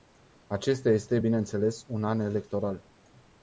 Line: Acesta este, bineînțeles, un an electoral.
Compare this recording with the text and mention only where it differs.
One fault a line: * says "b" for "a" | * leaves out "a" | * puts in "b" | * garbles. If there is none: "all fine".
all fine